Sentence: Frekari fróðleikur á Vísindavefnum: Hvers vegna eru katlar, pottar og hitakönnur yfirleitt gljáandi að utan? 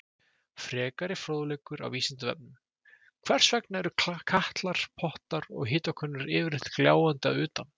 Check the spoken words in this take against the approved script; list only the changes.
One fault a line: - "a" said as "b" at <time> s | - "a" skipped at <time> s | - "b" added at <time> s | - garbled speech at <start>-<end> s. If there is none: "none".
none